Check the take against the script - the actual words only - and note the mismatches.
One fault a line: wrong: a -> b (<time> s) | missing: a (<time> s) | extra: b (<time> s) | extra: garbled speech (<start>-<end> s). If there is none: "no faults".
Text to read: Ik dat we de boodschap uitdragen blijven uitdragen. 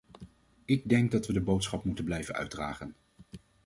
extra: denk (0.9 s)
wrong: uitdragen -> moeten (1.8 s)